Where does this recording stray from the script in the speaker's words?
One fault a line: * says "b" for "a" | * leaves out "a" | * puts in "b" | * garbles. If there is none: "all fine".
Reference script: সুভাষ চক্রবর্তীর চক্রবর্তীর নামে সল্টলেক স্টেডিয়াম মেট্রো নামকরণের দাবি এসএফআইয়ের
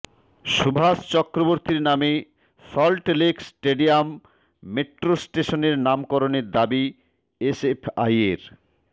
* leaves out "চক্রবর্তীর"
* puts in "স্টেশনের"